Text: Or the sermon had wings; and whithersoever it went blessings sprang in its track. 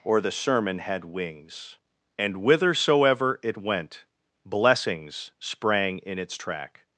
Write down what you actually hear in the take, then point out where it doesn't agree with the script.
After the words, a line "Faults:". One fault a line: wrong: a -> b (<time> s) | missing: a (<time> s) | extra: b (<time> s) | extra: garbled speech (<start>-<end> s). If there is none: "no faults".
Or the sermon had wings; and whithersoever it went blessings sprang in its track.
Faults:
no faults